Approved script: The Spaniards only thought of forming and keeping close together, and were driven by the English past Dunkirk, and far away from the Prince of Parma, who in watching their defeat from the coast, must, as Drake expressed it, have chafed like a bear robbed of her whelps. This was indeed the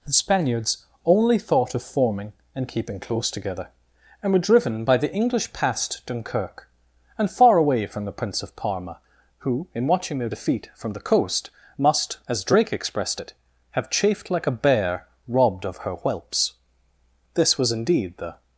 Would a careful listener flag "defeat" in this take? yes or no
no